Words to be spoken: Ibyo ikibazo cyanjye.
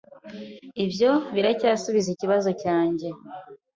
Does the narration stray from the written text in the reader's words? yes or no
yes